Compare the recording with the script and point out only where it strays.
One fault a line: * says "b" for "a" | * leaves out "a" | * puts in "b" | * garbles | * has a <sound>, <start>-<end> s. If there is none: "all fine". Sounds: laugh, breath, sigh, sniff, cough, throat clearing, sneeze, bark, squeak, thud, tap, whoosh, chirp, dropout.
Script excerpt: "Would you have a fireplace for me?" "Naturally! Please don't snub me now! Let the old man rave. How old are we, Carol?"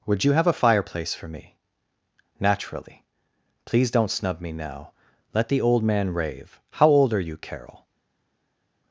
* says "you" for "we"